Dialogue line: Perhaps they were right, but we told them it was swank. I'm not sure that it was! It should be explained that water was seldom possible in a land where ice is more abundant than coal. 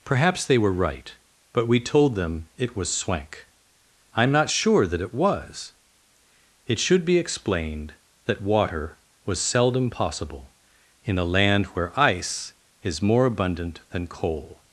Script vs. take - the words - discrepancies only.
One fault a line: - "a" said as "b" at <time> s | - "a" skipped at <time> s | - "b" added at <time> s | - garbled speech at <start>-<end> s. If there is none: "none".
none